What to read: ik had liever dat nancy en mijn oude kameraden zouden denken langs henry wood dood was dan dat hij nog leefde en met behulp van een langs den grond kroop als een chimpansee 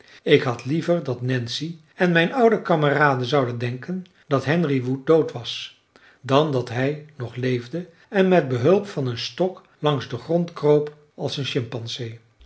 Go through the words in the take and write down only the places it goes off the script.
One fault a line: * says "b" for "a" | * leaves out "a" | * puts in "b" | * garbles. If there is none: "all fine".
* says "dat" for "langs"
* puts in "stok"